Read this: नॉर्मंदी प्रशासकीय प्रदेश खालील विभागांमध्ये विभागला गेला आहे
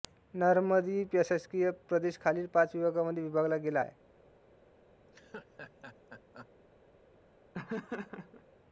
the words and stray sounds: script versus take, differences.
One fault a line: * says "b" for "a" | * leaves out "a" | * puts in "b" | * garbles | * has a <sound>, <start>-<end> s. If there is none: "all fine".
* puts in "पाच"
* has a laugh, 5.0-6.5 s
* has a laugh, 7.5-8.4 s